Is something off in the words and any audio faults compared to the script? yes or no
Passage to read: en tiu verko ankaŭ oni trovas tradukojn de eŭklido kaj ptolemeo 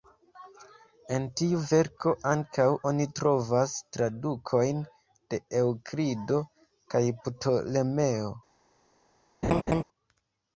yes